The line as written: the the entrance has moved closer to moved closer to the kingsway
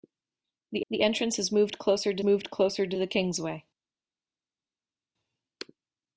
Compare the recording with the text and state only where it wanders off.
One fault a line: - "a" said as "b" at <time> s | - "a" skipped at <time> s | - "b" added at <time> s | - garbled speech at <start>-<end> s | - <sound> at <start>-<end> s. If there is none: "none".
none